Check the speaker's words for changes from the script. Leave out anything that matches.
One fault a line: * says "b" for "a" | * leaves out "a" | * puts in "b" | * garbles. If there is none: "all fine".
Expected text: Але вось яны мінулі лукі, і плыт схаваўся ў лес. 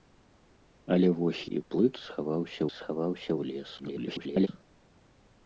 * leaves out "яны мінулі лукі"
* puts in "схаваўся"
* garbles